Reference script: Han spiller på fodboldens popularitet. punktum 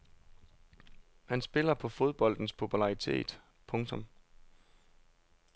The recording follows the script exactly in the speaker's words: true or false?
true